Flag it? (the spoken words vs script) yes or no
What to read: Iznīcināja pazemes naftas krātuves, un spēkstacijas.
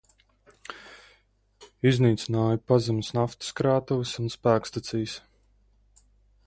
no